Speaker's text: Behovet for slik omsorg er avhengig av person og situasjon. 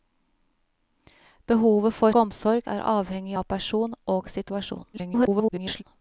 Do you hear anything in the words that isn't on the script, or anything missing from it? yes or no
yes